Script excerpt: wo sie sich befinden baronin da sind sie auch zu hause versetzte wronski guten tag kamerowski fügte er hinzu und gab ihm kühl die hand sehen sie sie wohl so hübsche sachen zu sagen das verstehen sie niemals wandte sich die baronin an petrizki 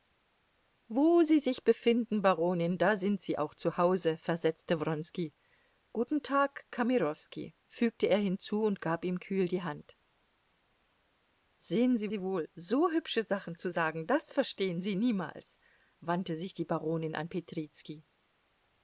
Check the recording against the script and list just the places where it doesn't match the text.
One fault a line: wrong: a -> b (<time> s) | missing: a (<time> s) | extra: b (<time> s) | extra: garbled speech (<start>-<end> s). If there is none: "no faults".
no faults